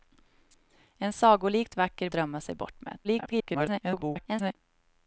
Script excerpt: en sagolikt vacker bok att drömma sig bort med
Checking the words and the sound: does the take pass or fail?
fail